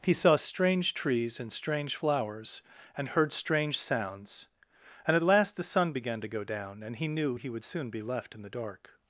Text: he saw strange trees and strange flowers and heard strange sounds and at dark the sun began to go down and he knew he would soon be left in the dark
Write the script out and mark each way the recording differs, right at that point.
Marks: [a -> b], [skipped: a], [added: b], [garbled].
he saw strange trees and strange flowers and heard strange sounds and at [dark -> last] the sun began to go down and he knew he would soon be left in the dark